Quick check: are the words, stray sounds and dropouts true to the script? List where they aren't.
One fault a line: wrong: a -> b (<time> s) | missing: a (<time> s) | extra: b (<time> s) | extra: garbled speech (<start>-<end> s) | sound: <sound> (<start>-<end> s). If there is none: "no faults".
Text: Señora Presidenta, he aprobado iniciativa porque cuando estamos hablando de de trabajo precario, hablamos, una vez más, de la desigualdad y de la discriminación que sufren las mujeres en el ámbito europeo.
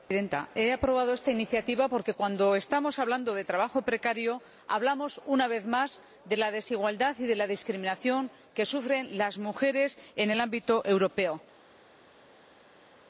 extra: esta (1.1 s)
missing: de (3.4 s)